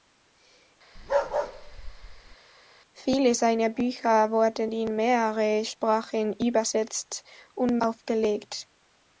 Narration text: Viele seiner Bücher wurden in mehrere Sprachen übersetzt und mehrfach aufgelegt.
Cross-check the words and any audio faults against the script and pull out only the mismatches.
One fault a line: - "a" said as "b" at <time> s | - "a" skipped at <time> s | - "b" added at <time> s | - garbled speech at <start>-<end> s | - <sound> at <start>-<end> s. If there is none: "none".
- bark at 1.0-2.4 s
- "mehrfach" skipped at 7.8 s